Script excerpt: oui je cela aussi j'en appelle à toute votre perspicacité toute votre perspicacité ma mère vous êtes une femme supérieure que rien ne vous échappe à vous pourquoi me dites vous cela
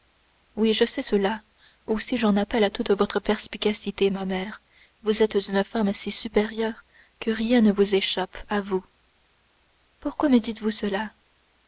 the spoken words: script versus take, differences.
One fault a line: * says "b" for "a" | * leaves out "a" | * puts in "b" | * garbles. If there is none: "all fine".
* puts in "sais"
* leaves out "toute votre perspicacité"
* puts in "si"